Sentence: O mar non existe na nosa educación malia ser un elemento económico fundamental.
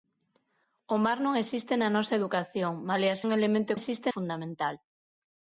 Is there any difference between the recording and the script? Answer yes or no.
yes